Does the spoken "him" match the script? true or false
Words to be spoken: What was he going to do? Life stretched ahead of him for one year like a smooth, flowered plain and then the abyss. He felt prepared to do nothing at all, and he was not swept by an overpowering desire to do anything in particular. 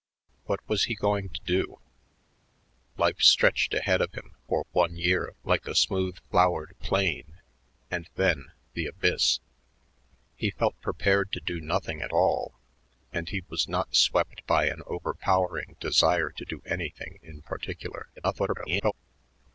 true